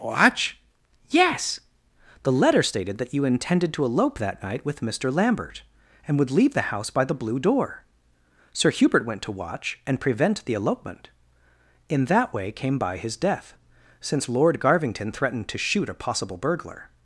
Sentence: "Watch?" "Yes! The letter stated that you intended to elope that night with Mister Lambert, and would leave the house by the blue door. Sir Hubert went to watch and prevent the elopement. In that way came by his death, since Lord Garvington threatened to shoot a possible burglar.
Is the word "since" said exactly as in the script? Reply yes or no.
yes